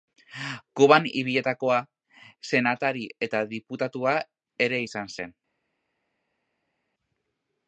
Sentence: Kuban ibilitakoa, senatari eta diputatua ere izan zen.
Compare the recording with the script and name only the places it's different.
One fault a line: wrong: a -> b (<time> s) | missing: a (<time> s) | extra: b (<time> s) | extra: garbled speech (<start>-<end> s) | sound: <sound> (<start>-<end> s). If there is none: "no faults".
no faults